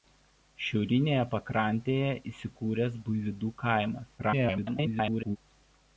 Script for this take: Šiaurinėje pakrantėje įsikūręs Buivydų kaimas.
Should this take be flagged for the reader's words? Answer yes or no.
yes